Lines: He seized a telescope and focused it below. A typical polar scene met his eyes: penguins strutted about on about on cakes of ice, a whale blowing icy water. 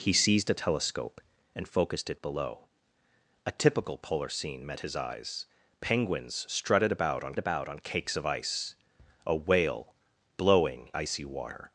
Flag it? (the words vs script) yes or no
no